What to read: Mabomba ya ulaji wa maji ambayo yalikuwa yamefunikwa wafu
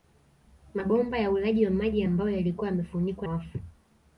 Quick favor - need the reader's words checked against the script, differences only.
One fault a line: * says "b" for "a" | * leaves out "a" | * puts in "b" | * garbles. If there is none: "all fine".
all fine